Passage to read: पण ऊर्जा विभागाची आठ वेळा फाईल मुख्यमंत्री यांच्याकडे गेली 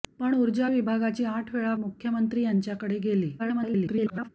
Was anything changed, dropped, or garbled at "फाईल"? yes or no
yes